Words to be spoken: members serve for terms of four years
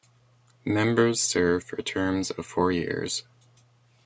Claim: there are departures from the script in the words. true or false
false